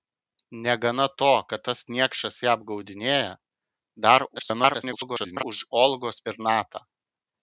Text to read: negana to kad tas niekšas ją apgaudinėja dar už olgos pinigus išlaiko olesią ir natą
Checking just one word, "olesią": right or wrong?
wrong